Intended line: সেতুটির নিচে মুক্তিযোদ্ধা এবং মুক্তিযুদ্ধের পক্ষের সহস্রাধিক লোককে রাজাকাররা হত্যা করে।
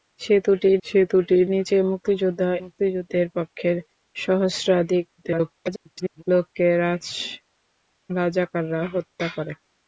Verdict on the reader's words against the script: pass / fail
fail